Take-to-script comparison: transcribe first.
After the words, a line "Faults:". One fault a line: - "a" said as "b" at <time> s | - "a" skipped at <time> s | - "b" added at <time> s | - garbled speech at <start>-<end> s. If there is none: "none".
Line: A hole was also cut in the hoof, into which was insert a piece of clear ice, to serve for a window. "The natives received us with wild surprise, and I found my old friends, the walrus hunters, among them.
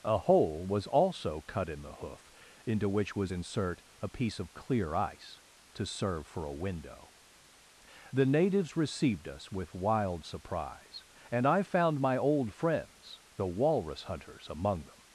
A hole was also cut in the hoof, into which was insert a piece of clear ice, to serve for a window. "The natives received us with wild surprise, and I found my old friends, the walrus hunters, among them.
Faults:
none